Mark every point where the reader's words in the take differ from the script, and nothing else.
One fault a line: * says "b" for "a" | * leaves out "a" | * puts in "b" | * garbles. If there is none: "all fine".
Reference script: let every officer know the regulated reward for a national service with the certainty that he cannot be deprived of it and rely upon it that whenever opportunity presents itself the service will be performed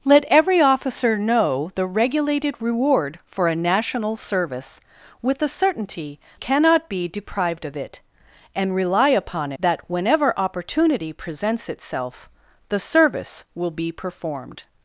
* leaves out "that he"
* leaves out "it"